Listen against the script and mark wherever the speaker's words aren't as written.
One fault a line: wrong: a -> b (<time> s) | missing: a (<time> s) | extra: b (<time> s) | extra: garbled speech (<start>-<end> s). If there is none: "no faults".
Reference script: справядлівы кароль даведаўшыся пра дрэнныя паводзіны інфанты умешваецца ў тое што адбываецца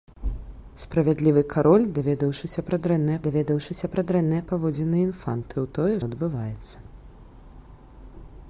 extra: даведаўшыся пра дрэнныя (3.3 s)
missing: умешваецца (5.5 s)
missing: што (5.9 s)